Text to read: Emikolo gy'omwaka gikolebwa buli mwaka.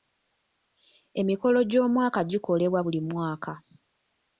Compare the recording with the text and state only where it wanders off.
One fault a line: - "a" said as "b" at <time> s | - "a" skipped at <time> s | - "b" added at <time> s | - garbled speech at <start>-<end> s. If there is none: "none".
none